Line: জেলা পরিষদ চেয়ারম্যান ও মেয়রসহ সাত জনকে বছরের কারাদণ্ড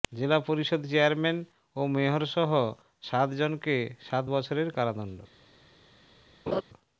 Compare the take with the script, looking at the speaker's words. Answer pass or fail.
fail